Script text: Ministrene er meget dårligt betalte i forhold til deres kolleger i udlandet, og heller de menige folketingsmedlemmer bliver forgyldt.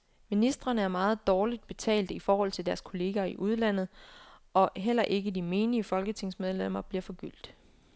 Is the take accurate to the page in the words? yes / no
no